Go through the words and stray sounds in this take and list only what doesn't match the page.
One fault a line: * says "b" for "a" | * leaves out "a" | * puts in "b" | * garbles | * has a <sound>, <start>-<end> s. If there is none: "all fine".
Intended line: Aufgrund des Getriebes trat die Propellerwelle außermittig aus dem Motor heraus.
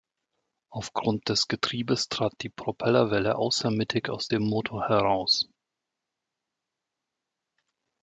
all fine